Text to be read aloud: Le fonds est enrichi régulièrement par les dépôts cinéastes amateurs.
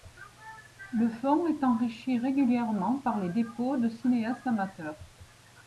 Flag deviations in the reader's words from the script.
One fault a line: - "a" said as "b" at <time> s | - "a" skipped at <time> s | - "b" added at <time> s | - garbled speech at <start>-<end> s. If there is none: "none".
- "de" added at 3.8 s